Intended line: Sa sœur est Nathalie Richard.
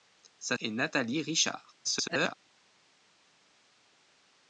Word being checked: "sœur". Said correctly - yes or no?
no